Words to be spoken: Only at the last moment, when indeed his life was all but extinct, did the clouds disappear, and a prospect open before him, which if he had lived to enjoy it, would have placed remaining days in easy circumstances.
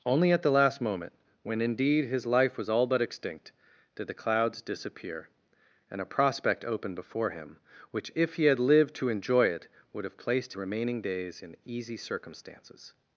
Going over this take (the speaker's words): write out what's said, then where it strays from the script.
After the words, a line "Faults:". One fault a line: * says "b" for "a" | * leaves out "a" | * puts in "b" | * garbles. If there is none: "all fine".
Only at the last moment, when indeed his life was all but extinct, did the clouds disappear, and a prospect open before him, which if he had lived to enjoy it, would have placed remaining days in easy circumstances.
Faults:
all fine